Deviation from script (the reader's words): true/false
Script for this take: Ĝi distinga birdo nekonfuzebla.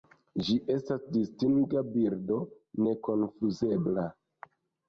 true